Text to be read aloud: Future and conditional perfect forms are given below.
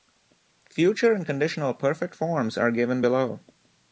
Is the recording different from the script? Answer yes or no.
no